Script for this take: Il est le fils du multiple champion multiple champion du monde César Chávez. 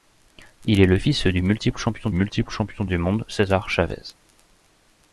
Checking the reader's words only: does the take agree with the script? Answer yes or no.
yes